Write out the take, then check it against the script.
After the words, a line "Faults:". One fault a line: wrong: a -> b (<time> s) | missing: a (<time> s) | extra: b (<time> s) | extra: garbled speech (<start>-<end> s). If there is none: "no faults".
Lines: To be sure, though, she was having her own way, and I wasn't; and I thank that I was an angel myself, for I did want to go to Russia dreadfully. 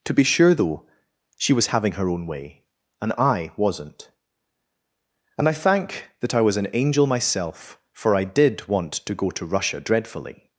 To be sure, though, she was having her own way, and I wasn't; and I thank that I was an angel myself, for I did want to go to Russia dreadfully.
Faults:
no faults